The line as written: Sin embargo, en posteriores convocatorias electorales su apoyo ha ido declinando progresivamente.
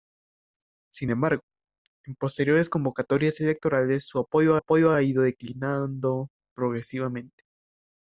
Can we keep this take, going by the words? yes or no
no